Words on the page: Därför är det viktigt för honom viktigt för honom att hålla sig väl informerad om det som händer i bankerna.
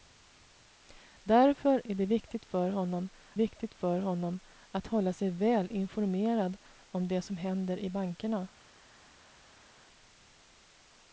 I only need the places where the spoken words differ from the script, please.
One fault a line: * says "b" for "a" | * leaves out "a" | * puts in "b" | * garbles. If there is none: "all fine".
all fine